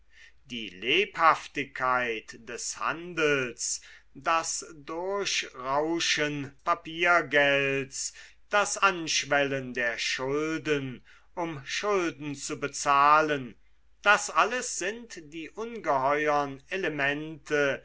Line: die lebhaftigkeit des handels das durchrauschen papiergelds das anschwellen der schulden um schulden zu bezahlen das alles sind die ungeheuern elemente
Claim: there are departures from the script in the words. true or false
false